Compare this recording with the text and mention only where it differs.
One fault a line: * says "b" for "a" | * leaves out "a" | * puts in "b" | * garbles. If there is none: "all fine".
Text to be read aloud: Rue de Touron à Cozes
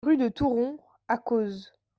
all fine